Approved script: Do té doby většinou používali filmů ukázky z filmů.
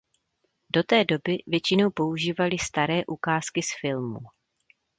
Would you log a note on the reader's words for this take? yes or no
yes